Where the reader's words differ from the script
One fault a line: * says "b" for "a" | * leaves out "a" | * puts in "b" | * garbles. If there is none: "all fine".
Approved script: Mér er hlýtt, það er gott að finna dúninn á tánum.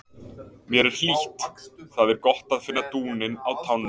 all fine